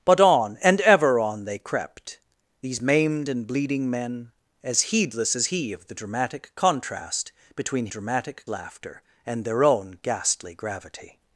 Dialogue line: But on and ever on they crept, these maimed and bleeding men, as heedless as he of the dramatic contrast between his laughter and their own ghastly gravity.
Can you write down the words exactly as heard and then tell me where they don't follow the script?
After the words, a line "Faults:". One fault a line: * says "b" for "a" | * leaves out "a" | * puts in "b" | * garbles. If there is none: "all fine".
But on and ever on they crept, these maimed and bleeding men, as heedless as he of the dramatic contrast between dramatic laughter and their own ghastly gravity.
Faults:
* says "dramatic" for "his"